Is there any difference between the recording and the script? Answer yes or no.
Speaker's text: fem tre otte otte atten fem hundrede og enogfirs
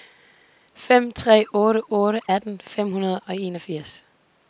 no